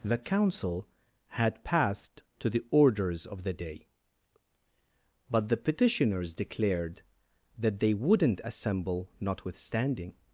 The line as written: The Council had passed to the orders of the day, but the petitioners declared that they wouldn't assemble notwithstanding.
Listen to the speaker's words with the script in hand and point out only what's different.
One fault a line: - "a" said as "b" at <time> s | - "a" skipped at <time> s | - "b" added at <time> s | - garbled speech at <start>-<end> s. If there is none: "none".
none